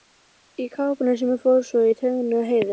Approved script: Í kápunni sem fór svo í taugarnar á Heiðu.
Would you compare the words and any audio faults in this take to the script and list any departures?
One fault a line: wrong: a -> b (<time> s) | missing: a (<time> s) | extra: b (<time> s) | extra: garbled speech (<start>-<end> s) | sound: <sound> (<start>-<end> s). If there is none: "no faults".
no faults